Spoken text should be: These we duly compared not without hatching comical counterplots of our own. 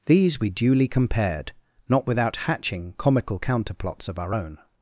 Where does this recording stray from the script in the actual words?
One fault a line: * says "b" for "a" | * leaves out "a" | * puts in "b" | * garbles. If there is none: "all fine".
all fine